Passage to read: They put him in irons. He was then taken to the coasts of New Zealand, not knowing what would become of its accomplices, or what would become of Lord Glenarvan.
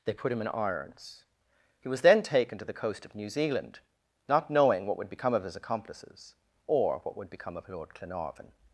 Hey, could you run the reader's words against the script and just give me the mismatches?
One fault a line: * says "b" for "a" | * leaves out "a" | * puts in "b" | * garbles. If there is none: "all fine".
* says "coast" for "coasts"
* says "his" for "its"